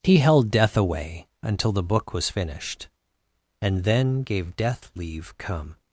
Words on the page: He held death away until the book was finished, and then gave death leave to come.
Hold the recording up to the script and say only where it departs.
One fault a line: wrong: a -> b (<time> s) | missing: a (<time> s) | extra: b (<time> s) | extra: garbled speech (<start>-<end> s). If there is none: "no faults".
missing: to (5.3 s)